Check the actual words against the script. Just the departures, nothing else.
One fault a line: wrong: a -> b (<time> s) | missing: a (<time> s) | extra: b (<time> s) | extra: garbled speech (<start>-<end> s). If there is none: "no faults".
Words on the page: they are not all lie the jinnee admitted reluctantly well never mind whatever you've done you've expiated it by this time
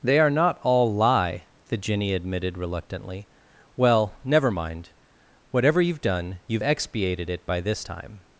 no faults